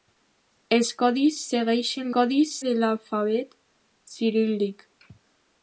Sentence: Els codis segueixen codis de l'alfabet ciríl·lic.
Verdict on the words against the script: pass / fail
pass